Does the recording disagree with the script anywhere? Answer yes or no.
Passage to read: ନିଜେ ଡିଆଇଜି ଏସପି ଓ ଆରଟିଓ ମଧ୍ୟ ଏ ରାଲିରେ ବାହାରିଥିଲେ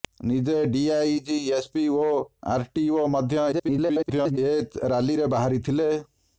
yes